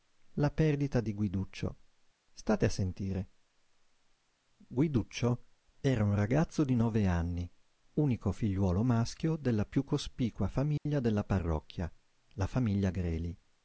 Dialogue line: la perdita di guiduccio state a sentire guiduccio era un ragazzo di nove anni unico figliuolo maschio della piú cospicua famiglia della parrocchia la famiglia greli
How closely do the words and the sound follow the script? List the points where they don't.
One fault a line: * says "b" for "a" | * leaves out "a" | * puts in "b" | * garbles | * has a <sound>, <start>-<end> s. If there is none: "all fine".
* has a dropout, 10.8-10.9 s